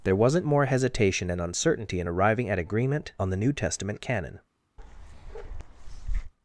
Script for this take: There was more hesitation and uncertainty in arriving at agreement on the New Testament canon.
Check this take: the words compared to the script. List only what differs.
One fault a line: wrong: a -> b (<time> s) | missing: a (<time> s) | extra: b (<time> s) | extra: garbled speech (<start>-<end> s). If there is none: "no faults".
wrong: was -> wasn't (0.1 s)